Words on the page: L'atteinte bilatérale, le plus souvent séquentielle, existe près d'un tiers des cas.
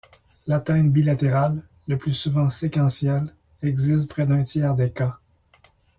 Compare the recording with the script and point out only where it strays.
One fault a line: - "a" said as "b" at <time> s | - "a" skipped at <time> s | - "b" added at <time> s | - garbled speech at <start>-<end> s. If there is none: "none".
none